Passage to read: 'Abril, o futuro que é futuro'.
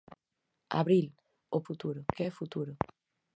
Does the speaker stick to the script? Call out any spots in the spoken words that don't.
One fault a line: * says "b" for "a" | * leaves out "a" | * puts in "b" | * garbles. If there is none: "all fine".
all fine